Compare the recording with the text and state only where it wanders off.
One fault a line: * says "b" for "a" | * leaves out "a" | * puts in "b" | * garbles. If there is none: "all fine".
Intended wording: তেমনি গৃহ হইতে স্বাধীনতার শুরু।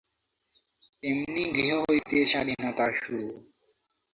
all fine